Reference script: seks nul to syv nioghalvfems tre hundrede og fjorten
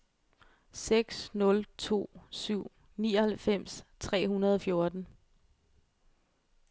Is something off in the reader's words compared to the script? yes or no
no